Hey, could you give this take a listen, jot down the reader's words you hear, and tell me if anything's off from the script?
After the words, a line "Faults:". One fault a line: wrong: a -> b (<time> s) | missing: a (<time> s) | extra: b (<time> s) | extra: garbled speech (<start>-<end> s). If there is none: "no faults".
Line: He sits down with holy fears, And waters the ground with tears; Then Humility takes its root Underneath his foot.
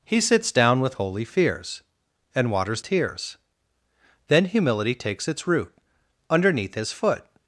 He sits down with holy fears, And waters tears; Then Humility takes its root Underneath his foot.
Faults:
missing: the ground with (2.8 s)